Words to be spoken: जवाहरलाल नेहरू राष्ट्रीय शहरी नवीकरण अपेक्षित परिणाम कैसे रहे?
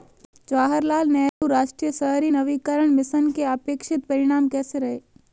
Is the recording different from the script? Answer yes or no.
yes